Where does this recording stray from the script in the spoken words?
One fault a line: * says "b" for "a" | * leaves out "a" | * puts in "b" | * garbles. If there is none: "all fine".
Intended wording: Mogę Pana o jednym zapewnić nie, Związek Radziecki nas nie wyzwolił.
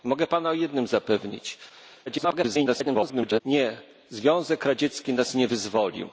* garbles